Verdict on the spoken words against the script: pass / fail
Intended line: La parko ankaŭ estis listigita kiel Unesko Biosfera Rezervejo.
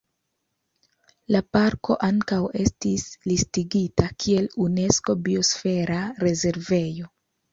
pass